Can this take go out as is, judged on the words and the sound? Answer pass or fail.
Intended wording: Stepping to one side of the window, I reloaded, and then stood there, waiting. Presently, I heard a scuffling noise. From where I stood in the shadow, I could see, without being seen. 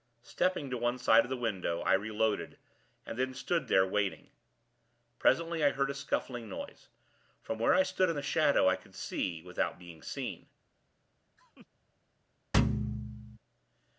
fail